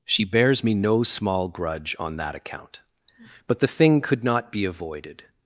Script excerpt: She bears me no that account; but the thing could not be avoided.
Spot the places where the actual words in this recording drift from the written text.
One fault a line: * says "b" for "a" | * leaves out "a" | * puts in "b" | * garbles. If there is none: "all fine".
* puts in "small grudge on"